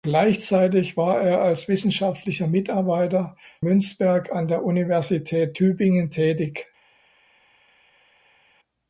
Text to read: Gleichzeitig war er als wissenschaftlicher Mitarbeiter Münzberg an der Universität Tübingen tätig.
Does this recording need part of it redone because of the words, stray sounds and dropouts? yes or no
no